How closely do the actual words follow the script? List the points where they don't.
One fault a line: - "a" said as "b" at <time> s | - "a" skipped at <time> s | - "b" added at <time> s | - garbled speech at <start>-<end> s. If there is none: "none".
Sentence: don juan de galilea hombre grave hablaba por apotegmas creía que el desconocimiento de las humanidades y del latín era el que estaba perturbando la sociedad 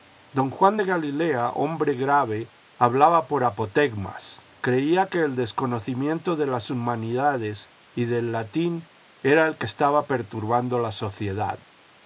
none